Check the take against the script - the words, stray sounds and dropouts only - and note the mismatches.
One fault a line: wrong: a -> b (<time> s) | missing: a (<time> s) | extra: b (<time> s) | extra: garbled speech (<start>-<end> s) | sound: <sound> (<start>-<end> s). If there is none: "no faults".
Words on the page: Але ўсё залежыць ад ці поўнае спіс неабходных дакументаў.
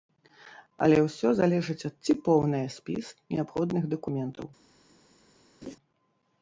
sound: laugh (5.6-5.8 s)